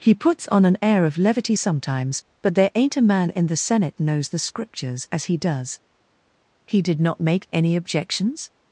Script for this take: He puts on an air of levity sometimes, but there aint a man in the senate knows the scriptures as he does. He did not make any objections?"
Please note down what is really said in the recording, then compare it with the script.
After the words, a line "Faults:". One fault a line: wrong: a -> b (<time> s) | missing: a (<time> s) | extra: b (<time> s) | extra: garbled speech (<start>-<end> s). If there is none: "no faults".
He puts on an air of levity sometimes, but there aint a man in the senate knows the scriptures as he does. He did not make any objections?"
Faults:
no faults